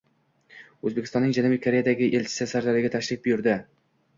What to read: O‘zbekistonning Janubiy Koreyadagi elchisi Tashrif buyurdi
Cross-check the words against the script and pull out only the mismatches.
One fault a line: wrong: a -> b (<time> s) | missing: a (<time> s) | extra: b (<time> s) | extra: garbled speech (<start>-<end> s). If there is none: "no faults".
extra: Sirdaryoga (2.5 s)